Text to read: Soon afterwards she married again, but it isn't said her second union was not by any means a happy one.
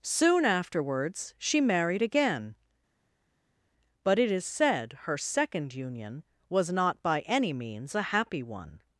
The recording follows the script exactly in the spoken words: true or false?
false